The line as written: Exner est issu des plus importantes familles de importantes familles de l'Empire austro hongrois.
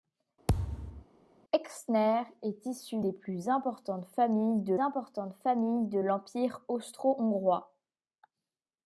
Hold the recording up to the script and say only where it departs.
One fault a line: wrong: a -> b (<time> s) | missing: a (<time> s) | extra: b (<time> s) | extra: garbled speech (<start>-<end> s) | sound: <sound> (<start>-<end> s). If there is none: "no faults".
sound: thud (0.5-1.1 s)